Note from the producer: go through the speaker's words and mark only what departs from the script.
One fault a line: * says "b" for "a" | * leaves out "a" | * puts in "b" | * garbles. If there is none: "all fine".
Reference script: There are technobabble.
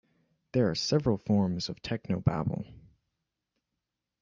* puts in "several forms of"